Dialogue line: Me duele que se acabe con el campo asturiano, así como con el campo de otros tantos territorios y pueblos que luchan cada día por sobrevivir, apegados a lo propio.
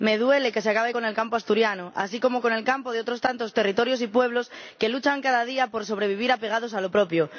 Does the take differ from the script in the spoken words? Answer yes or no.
no